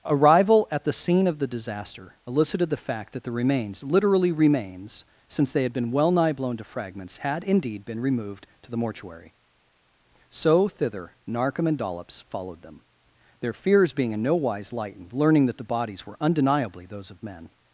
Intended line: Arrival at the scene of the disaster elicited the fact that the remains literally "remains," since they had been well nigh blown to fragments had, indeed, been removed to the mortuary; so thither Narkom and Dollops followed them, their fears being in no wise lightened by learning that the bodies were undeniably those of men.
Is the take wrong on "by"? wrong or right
wrong